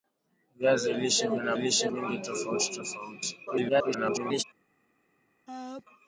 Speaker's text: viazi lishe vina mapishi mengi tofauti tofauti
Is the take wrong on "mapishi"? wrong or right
wrong